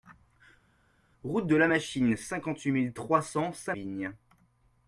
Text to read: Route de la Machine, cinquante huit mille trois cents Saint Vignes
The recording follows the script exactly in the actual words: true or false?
true